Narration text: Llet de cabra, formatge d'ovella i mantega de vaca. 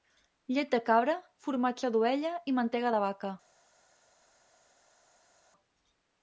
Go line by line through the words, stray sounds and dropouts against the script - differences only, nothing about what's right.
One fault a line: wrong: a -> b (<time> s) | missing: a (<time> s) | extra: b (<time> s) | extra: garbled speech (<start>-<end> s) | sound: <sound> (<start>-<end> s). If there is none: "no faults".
no faults